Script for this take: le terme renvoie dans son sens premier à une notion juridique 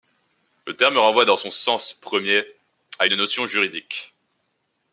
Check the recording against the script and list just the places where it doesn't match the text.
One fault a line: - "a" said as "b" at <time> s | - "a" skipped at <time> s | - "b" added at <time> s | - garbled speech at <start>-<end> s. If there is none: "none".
none